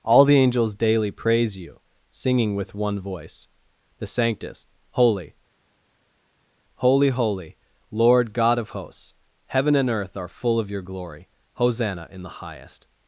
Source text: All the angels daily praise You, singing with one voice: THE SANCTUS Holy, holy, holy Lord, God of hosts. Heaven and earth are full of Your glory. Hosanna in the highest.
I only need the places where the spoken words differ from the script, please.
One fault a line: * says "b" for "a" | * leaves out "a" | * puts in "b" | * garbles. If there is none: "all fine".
all fine